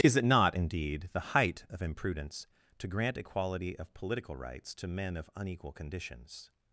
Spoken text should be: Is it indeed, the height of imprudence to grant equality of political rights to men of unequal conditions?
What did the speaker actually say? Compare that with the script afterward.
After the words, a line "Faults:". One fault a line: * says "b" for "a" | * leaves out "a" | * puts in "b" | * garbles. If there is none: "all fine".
Is it not, indeed, the height of imprudence to grant equality of political rights to men of unequal conditions?
Faults:
* puts in "not"